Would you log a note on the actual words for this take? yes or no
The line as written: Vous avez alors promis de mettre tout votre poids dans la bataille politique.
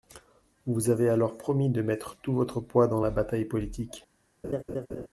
no